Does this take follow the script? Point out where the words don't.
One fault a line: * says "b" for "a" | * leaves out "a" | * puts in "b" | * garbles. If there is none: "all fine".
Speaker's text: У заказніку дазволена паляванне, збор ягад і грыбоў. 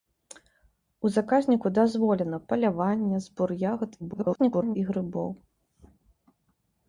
* garbles